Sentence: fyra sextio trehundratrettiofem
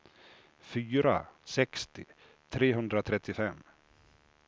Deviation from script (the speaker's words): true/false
false